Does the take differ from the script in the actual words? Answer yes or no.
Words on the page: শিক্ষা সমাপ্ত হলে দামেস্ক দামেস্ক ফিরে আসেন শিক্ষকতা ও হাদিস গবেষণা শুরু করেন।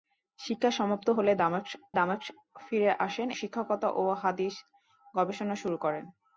no